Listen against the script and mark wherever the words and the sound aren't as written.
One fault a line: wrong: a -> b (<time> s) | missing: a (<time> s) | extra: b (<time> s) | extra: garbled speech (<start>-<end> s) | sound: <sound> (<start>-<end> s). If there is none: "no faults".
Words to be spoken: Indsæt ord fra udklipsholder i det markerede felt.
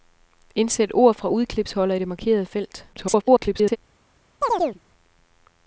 extra: garbled speech (2.9-3.8 s)
sound: chirp (4.4-4.8 s)